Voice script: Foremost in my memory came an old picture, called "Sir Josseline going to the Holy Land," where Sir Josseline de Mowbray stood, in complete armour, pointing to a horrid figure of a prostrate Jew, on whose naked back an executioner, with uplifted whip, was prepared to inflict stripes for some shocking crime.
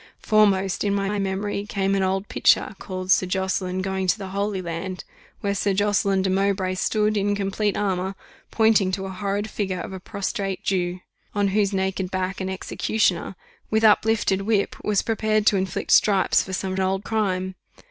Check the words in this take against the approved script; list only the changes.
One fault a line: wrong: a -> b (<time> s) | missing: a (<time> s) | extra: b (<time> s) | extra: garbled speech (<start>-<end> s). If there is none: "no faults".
extra: my (1.1 s)
wrong: shocking -> old (16.8 s)